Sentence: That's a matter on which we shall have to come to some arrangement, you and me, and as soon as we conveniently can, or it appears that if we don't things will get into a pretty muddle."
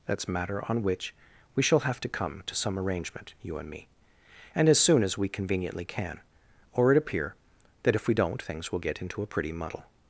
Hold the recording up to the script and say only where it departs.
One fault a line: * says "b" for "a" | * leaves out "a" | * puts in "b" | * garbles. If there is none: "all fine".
* leaves out "a"
* says "appear" for "appears"